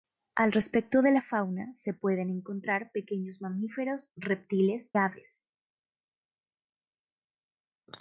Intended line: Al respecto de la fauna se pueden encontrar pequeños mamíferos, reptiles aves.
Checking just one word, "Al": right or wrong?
right